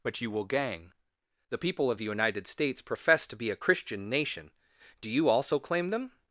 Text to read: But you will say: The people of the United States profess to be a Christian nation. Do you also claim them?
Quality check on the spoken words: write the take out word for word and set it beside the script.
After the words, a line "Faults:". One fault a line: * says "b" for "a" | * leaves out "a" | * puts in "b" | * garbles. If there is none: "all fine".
But you will gang: The people of the United States profess to be a Christian nation. Do you also claim them?
Faults:
* says "gang" for "say"